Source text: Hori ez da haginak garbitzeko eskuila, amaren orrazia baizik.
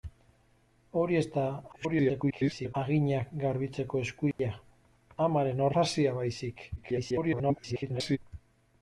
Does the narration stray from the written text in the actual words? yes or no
yes